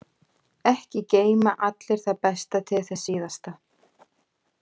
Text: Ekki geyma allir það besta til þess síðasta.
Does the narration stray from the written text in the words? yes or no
no